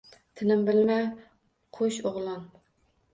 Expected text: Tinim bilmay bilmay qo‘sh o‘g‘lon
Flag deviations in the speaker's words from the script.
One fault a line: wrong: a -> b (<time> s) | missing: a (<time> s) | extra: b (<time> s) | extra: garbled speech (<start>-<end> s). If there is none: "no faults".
missing: bilmay (1.0 s)